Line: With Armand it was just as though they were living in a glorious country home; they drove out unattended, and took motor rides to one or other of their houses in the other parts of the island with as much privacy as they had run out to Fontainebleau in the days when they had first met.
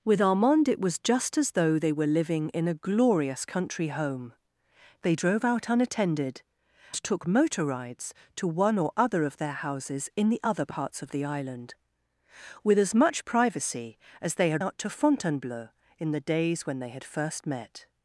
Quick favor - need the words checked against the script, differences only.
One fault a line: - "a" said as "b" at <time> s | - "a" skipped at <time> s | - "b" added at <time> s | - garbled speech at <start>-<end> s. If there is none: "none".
- "and" skipped at 6.4 s
- "run" skipped at 14.6 s